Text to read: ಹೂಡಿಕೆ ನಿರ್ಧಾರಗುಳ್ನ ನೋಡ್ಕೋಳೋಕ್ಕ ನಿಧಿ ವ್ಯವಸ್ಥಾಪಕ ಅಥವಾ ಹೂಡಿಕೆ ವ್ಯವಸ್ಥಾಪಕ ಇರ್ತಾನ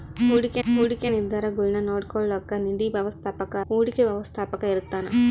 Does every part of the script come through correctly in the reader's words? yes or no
no